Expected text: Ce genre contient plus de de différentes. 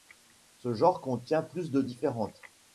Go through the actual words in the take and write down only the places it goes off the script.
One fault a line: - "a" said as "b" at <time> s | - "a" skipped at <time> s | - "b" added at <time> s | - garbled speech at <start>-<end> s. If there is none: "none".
- "de" skipped at 1.8 s